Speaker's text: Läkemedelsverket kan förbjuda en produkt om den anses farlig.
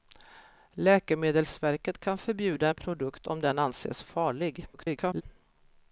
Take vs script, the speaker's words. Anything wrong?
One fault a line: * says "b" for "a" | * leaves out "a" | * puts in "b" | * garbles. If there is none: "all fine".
* garbles